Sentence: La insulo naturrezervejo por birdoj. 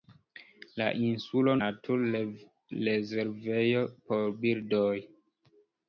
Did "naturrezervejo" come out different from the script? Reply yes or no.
no